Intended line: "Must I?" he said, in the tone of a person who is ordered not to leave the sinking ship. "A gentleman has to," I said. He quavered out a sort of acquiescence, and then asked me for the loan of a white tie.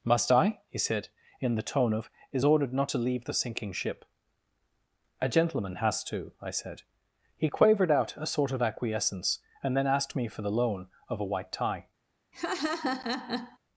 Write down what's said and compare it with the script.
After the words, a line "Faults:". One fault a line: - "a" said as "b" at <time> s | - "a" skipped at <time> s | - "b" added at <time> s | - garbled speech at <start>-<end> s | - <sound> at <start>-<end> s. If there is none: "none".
"Must I?" he said, in the tone of is ordered not to leave the sinking ship. "A gentleman has to," I said. He quavered out a sort of acquiescence, and then asked me for the loan of a white tie.
Faults:
- "a person who" skipped at 2.1 s
- laugh at 12.3-13.6 s